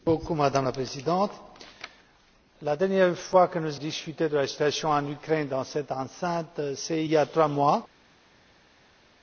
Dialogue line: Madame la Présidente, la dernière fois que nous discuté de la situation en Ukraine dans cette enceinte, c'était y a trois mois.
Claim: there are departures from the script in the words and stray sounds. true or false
false